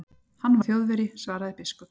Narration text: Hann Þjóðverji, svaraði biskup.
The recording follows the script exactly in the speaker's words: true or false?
true